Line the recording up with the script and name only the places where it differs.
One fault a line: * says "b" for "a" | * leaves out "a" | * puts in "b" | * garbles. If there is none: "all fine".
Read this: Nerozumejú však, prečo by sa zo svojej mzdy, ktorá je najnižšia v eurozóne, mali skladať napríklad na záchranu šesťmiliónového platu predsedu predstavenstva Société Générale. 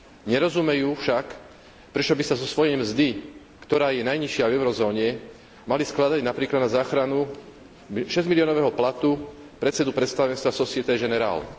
all fine